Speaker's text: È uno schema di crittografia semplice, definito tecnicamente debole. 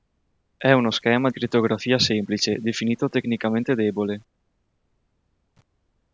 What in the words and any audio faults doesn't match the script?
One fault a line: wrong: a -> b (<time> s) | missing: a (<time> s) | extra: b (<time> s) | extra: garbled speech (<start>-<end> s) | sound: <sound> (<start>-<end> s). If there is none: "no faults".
missing: di (1.3 s)